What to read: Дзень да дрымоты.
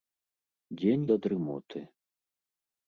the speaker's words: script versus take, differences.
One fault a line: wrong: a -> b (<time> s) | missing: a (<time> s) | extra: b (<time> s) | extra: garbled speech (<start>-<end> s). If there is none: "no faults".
no faults